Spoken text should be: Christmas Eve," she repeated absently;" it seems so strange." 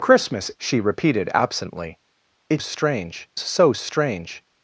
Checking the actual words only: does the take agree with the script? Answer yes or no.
no